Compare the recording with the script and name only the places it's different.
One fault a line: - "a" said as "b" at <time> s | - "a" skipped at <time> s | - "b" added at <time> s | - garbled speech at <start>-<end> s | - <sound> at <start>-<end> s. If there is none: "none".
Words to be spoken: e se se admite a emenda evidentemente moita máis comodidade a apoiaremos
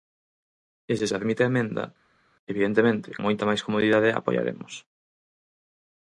none